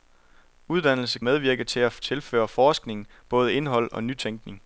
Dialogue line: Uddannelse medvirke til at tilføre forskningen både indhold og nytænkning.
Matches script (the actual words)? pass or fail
pass